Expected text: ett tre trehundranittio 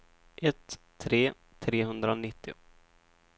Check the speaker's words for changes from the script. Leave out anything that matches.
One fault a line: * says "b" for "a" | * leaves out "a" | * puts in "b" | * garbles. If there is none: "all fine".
all fine